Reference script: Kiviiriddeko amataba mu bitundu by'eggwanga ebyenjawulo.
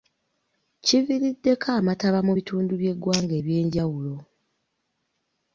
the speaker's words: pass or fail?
pass